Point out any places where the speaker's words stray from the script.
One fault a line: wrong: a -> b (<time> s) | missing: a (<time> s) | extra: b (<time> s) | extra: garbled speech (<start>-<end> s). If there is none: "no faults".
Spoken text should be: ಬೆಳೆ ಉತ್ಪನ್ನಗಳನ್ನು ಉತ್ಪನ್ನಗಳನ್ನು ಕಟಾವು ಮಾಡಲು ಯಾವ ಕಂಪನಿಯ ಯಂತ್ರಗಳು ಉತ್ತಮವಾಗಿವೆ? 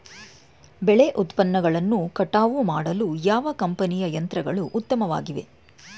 missing: ಉತ್ಪನ್ನಗಳನ್ನು (2.1 s)